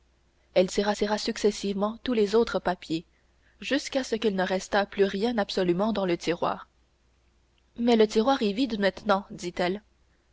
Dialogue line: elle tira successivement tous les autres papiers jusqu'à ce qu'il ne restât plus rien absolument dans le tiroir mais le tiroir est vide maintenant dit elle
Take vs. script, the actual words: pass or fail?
fail